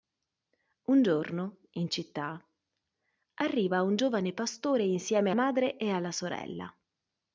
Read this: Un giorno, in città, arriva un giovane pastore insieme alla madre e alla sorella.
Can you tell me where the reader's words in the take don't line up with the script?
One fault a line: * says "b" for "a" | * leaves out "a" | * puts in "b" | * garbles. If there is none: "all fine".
* leaves out "alla"